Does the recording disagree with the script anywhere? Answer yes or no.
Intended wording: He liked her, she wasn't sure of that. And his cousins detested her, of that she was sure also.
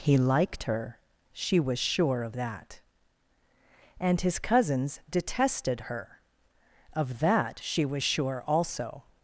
yes